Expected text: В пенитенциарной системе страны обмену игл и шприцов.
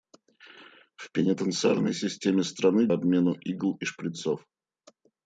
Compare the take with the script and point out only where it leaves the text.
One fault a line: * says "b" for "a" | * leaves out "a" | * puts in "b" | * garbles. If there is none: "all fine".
all fine